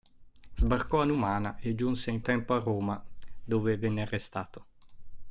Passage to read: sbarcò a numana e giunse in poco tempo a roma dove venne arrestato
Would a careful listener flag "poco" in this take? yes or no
yes